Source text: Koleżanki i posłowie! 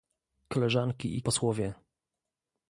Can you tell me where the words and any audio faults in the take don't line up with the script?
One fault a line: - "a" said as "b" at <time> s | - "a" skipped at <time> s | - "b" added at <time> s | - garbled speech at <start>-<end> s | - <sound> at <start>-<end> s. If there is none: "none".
none